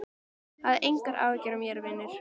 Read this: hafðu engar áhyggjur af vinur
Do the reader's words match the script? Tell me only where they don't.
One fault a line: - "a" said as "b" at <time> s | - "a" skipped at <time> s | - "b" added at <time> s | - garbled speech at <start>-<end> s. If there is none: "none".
- "mér" added at 1.6 s